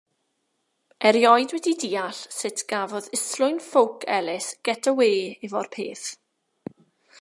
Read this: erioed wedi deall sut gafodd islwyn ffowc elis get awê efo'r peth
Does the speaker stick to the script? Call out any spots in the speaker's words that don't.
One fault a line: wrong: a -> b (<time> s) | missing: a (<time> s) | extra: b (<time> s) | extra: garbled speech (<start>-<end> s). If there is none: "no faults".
no faults